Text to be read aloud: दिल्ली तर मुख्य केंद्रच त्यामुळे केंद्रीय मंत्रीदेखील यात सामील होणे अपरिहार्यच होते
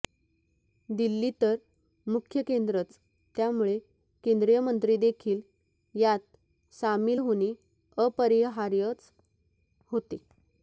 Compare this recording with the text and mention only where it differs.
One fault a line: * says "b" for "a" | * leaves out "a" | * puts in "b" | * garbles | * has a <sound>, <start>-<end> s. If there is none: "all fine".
all fine